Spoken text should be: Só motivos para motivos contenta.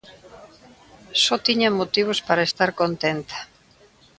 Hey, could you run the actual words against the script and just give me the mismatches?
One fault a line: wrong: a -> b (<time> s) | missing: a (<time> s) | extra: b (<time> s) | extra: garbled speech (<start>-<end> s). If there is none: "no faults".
extra: tiña (1.5 s)
wrong: motivos -> estar (2.5 s)